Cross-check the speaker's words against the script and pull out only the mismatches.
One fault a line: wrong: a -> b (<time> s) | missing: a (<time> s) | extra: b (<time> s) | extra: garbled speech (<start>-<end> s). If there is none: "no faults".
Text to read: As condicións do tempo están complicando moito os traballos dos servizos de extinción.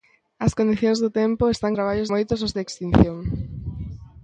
wrong: complicando -> traballos (1.7 s)
missing: traballos dos servizos (2.6 s)